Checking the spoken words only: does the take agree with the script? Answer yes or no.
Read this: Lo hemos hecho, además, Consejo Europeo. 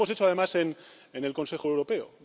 no